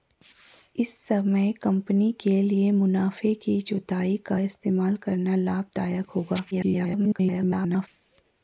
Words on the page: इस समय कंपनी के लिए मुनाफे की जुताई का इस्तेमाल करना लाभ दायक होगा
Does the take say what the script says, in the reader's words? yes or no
no